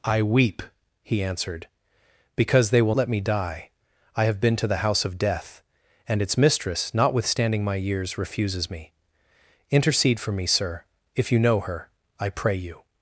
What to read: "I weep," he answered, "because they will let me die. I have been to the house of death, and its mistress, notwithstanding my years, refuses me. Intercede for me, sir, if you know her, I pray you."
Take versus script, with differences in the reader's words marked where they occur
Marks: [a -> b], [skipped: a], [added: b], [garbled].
"I weep," he answered, "because they will let me die. I have been to the house of death, and its mistress, notwithstanding my years, refuses me. Intercede for me, sir, if you know her, I pray you."